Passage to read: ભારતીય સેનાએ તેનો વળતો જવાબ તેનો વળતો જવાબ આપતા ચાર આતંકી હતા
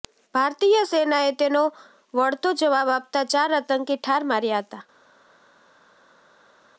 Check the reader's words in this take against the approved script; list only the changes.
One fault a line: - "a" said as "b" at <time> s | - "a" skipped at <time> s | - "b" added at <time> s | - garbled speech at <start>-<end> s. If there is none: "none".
- "તેનો વળતો જવાબ" skipped at 2.9 s
- "ઠાર માર્યા" added at 4.0 s